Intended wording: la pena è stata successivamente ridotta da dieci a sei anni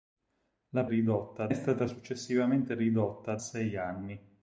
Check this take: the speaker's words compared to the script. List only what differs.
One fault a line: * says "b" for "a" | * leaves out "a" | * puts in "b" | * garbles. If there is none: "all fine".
* says "ridotta" for "pena"
* leaves out "da dieci a"